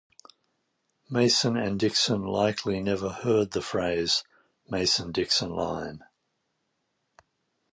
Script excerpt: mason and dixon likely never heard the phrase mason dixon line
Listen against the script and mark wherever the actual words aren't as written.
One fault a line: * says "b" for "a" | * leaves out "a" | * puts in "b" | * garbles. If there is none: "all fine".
all fine